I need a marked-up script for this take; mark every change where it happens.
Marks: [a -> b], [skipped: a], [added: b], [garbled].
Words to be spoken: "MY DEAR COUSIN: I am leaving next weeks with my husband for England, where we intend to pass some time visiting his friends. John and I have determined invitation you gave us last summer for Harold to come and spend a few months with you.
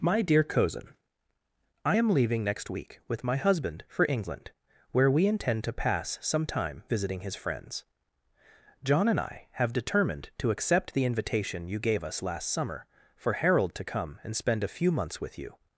"MY DEAR COUSIN: I am leaving next [weeks -> week] with my husband for England, where we intend to pass some time visiting his friends. John and I have determined [added: to accept the] invitation you gave us last summer for Harold to come and spend a few months with you.